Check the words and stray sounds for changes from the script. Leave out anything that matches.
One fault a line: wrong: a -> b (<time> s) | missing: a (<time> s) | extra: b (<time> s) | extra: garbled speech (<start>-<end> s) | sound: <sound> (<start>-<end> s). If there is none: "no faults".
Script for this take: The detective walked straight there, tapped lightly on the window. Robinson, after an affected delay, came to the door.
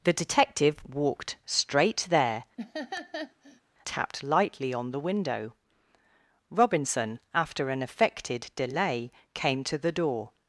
sound: laugh (2.6-3.6 s)